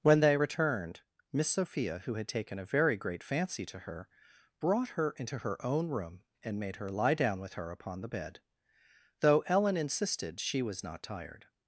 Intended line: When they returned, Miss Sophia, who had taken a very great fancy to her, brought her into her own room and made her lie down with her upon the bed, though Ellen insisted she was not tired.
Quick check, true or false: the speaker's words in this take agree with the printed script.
true